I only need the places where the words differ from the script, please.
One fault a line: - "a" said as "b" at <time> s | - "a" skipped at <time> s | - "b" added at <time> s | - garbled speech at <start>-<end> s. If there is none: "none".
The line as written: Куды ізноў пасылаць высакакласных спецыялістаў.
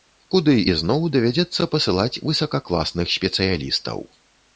- "давядзецца" added at 1.1 s